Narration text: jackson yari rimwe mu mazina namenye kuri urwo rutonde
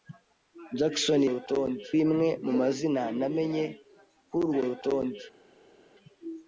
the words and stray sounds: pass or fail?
fail